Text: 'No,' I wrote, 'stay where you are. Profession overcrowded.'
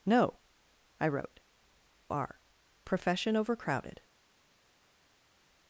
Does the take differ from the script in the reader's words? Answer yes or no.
yes